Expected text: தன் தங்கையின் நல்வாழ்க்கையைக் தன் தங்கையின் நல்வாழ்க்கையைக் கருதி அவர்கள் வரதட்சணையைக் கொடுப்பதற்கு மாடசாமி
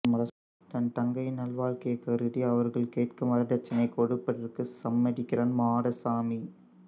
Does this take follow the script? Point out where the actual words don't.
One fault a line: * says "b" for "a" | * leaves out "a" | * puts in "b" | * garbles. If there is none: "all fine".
* leaves out "தன் தங்கையின் நல்வாழ்க்கையைக்"
* puts in "கேட்கும்"
* puts in "சம்மதிக்கிறான்"